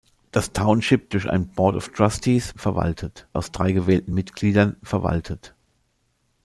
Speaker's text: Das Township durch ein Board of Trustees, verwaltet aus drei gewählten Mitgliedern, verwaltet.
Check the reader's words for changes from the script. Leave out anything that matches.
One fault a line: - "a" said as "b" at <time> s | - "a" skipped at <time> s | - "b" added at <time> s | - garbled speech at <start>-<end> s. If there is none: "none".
none